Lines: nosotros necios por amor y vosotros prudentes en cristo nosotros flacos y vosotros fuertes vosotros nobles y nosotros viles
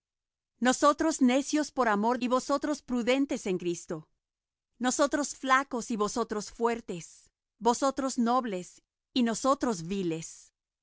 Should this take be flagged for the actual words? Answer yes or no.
no